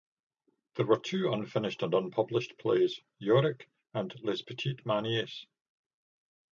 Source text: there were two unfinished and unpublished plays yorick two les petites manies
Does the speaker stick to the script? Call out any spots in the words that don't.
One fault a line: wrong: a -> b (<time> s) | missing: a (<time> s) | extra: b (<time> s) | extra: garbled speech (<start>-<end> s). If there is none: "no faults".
wrong: two -> and (3.9 s)